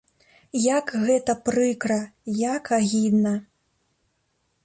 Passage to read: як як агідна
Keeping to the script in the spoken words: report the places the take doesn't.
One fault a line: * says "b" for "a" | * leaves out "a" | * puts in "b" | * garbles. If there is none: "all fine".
* puts in "гэта прыкра"